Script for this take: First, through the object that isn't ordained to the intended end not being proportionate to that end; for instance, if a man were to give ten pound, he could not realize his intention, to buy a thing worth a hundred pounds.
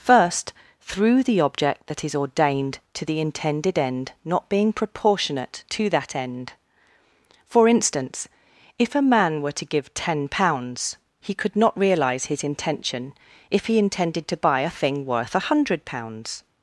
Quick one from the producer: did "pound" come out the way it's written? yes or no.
no